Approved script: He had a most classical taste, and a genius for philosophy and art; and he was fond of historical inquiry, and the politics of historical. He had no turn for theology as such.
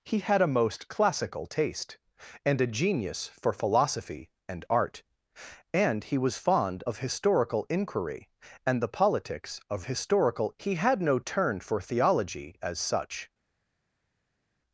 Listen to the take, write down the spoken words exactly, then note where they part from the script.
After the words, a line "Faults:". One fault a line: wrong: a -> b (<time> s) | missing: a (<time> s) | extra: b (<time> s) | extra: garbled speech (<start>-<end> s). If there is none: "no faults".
He had a most classical taste, and a genius for philosophy and art; and he was fond of historical inquiry, and the politics of historical. He had no turn for theology as such.
Faults:
no faults